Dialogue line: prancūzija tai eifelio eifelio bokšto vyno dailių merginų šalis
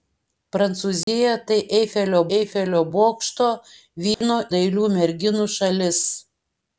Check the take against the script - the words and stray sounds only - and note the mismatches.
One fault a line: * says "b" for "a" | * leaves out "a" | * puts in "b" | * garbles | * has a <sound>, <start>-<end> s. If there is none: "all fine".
* has a dropout, 1.0-1.1 s
* has a dropout, 4.1-4.2 s